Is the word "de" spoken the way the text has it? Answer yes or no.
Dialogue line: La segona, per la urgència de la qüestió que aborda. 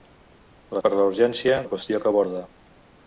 no